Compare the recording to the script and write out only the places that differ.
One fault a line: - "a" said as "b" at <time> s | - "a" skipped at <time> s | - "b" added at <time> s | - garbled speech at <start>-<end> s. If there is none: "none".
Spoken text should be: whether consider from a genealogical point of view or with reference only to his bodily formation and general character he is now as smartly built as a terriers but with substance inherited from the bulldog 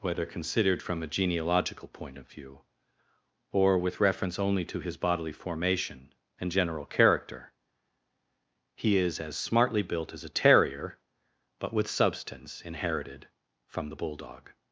- "consider" said as "considered" at 0.2 s
- "now" skipped at 9.2 s
- "terriers" said as "terrier" at 10.3 s